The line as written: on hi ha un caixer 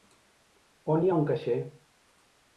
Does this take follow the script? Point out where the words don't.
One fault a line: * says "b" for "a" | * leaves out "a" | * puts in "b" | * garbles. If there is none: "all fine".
all fine